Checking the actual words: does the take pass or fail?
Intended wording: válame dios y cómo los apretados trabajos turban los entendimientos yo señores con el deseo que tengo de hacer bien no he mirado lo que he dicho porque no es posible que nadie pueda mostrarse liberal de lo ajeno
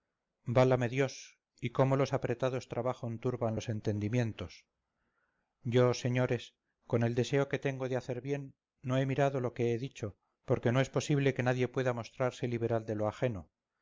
pass